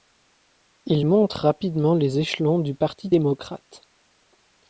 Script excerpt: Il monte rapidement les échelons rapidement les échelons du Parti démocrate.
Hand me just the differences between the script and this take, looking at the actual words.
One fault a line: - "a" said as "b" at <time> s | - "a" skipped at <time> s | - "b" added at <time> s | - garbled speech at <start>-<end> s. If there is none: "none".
- "rapidement les échelons" skipped at 2.6 s